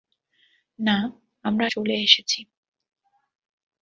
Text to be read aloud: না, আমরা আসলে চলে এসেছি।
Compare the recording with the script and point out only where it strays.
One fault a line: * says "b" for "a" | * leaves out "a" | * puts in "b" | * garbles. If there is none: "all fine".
* leaves out "আসলে"